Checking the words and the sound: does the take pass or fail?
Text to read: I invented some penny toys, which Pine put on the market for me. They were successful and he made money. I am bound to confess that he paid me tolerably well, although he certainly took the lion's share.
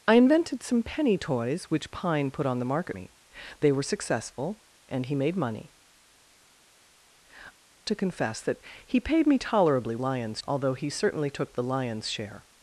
fail